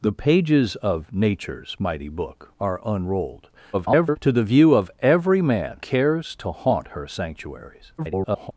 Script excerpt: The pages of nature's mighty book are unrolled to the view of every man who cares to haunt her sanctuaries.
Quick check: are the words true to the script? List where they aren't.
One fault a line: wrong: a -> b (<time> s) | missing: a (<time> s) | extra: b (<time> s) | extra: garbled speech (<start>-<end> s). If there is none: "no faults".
extra: garbled speech (3.7-4.2 s)
missing: who (5.8 s)
extra: garbled speech (8.0-8.5 s)